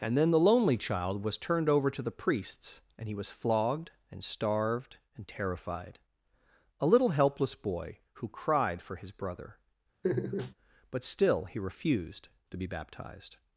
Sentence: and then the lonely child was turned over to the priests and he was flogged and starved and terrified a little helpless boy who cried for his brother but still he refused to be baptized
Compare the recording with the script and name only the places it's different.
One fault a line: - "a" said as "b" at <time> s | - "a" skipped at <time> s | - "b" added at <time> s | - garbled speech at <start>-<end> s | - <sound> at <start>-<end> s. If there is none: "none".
- laugh at 10.0-10.5 s